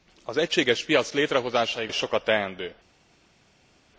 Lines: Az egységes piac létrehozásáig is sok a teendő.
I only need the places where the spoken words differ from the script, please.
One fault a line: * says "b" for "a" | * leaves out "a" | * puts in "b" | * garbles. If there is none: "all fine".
all fine